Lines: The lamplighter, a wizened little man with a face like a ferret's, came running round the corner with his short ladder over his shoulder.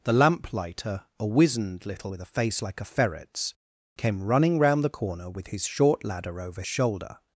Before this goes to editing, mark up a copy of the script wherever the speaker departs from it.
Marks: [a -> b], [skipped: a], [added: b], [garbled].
The lamplighter, a wizened little [skipped: man] with a face like a ferret's, came running round the corner with his short ladder over [skipped: his] shoulder.